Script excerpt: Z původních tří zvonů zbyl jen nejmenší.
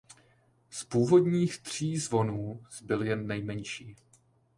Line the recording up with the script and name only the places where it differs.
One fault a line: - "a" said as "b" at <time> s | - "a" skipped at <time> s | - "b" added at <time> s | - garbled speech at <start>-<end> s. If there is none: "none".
none